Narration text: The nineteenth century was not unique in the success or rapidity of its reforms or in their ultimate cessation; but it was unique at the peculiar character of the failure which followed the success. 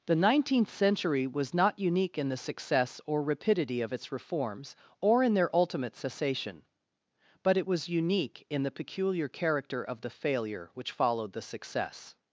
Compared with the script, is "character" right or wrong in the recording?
right